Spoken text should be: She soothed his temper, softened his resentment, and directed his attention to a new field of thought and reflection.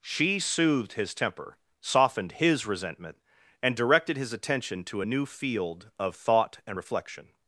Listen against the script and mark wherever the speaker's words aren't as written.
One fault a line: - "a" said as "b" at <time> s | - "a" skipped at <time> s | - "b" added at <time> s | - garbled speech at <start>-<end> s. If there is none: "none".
none